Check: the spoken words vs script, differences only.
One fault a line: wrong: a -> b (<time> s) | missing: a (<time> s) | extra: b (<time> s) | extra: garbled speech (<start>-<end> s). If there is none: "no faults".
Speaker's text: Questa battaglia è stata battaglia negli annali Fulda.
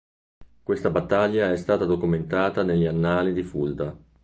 wrong: battaglia -> documentata (1.9 s)
extra: di (3.3 s)